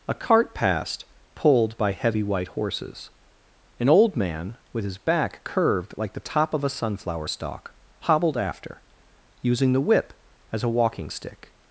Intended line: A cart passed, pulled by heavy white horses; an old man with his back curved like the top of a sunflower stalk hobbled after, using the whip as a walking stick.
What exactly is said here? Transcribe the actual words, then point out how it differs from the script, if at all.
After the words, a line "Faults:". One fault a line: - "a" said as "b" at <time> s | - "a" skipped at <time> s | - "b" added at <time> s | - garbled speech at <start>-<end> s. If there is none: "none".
A cart passed, pulled by heavy white horses; an old man with his back curved like the top of a sunflower stalk hobbled after, using the whip as a walking stick.
Faults:
none